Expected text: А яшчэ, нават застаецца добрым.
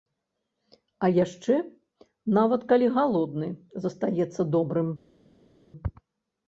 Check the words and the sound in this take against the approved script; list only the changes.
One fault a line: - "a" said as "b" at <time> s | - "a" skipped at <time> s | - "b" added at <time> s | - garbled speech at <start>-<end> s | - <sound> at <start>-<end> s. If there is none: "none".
- "калі галодны" added at 2.7 s